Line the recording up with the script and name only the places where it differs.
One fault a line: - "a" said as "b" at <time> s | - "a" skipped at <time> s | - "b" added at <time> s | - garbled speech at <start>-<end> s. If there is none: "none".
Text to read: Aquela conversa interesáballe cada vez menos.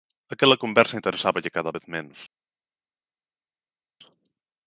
none